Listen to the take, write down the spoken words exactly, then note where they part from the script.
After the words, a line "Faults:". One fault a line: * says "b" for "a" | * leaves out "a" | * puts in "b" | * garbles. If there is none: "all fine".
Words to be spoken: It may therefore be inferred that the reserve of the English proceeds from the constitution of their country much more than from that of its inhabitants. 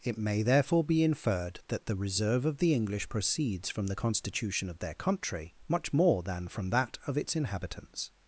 It may therefore be inferred that the reserve of the English proceeds from the constitution of their country much more than from that of its inhabitants.
Faults:
all fine